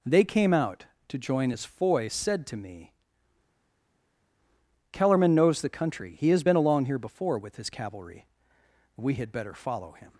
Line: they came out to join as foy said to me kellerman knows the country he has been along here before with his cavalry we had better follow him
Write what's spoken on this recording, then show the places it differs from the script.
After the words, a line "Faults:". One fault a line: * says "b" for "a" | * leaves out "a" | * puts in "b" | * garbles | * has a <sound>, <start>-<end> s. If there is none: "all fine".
they came out to join as foy said to me kellerman knows the country he has been along here before with his cavalry we had better follow him
Faults:
all fine